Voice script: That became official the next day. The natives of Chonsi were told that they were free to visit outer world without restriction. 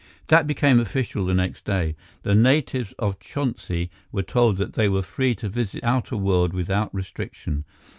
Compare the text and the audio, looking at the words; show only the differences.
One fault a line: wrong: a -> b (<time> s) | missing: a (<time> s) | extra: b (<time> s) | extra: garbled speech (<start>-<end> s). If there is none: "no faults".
no faults